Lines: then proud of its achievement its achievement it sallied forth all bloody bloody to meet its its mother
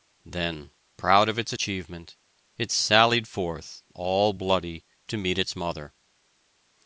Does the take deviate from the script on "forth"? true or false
false